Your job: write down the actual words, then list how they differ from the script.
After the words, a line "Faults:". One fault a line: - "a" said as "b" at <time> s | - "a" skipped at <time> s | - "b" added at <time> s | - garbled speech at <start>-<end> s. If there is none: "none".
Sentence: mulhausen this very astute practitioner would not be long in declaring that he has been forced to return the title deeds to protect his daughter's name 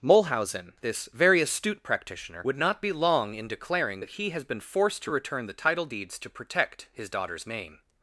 mulhausen this very astute practitioner would not be long in declaring that he has been forced to return the title deeds to protect his daughter's name
Faults:
none